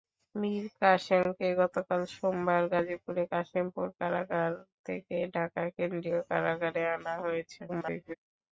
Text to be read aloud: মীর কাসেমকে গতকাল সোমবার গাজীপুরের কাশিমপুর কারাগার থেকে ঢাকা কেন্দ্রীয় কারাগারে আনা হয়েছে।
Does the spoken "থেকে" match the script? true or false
true